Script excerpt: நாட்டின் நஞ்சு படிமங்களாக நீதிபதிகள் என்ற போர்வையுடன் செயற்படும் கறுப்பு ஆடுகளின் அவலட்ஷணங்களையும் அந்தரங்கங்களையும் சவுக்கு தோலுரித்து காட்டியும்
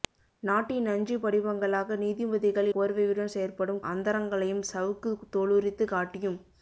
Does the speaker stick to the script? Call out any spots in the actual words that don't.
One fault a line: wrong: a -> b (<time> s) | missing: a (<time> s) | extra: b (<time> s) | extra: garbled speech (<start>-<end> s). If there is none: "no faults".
missing: என்ற (2.7 s)
missing: கறுப்பு ஆடுகளின் அவலட்ஷணங்களையும் (3.8 s)